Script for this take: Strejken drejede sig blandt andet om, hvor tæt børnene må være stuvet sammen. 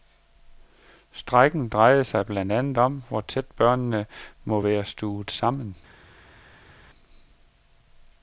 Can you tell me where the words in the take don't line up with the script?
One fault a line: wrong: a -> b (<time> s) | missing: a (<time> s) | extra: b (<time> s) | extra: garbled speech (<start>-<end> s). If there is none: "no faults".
no faults